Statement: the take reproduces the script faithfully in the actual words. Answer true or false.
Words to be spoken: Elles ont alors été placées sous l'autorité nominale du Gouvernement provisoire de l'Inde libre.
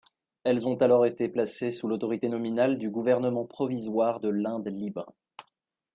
true